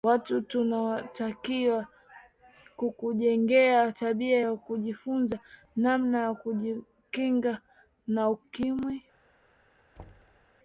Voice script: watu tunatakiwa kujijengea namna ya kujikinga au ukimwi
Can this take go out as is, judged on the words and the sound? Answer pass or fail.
fail